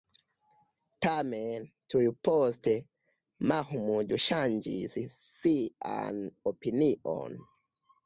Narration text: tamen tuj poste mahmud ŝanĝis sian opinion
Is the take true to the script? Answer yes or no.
yes